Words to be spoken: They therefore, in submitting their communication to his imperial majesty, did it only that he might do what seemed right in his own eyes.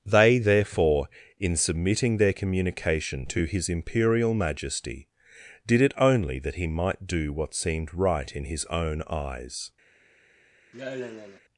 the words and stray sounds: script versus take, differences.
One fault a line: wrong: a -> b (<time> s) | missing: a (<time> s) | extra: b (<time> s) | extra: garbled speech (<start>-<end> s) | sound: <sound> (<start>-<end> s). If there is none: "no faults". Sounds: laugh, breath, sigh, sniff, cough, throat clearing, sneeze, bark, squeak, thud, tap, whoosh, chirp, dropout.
sound: sigh (10.7-11.4 s)